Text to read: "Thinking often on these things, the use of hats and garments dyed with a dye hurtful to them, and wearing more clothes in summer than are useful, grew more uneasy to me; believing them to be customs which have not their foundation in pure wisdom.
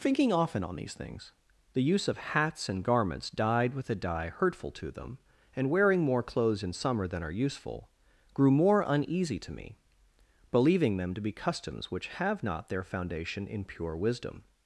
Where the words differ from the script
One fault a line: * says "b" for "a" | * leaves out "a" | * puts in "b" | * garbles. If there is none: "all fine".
all fine